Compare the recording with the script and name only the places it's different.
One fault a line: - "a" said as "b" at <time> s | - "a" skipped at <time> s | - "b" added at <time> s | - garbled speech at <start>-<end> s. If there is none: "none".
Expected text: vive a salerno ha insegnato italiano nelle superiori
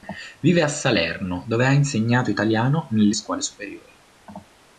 - "dove" added at 1.5 s
- "scuole" added at 3.1 s